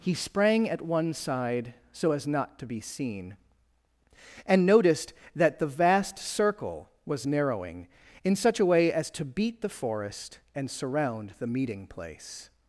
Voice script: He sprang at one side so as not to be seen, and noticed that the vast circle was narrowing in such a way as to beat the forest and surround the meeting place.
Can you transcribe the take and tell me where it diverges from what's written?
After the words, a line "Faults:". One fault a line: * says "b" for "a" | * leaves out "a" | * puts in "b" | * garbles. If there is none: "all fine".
He sprang at one side so as not to be seen, and noticed that the vast circle was narrowing in such a way as to beat the forest and surround the meeting place.
Faults:
all fine